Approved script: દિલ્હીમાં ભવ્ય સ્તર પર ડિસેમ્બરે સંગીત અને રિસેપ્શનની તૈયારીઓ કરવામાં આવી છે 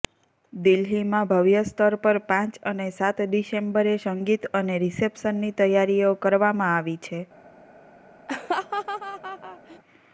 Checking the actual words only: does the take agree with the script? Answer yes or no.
no